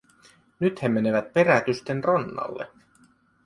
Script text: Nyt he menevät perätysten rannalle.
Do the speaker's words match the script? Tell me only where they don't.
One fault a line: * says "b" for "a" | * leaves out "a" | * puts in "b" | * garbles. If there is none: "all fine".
all fine